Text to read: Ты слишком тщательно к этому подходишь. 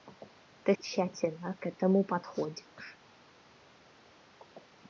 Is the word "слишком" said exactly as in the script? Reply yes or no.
no